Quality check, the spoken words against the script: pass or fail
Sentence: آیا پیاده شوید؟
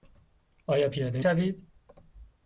pass